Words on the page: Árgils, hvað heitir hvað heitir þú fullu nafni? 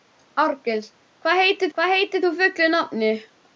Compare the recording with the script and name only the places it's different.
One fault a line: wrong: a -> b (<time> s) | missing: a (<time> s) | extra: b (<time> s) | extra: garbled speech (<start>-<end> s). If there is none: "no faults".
no faults